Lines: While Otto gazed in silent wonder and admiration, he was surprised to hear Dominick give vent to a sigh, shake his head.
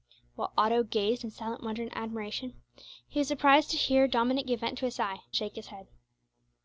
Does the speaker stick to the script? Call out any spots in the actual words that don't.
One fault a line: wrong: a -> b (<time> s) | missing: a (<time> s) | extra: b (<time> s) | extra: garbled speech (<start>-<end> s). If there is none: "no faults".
no faults